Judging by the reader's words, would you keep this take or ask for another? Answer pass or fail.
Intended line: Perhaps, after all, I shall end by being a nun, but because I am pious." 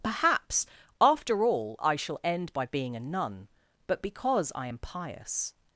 pass